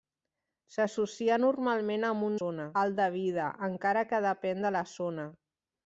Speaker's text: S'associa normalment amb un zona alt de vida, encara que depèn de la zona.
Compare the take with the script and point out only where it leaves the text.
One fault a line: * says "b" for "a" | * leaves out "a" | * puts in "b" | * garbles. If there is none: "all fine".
all fine